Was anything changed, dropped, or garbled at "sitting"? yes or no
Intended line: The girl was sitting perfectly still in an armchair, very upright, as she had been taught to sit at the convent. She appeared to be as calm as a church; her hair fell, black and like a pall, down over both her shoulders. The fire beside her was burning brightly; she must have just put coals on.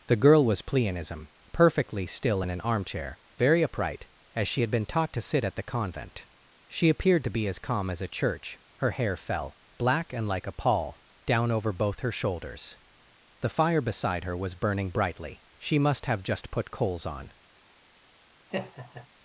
yes